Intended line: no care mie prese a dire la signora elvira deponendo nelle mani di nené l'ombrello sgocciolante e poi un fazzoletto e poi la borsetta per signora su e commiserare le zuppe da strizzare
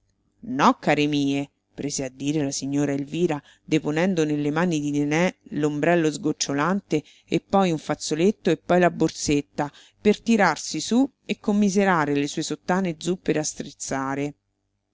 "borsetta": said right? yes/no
yes